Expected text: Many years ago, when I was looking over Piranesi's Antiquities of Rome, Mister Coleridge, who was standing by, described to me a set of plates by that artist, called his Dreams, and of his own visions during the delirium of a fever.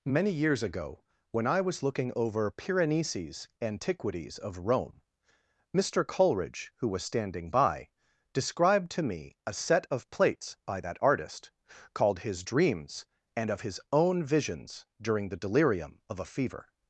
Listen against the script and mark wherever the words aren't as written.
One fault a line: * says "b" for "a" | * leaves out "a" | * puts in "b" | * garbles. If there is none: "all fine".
all fine